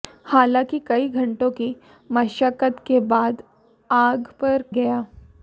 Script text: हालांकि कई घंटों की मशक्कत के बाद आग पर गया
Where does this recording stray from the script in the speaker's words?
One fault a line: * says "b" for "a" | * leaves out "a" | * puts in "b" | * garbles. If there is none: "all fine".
all fine